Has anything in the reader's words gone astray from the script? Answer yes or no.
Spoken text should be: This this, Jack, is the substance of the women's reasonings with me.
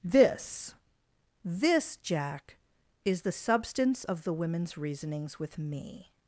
no